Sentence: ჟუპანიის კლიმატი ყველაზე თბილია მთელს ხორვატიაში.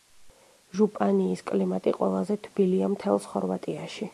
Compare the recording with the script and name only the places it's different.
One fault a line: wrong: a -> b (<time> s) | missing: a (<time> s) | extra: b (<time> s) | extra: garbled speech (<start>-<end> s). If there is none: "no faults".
no faults